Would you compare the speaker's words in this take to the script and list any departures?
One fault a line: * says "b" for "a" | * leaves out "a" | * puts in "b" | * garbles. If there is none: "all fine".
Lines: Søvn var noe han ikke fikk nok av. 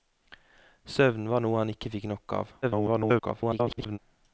* garbles